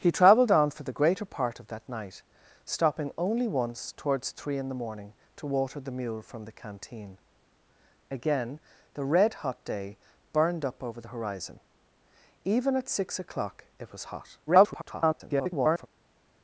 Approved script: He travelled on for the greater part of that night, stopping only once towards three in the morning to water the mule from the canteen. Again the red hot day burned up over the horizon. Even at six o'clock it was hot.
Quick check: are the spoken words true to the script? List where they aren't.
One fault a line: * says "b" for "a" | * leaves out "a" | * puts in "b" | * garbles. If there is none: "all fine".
* garbles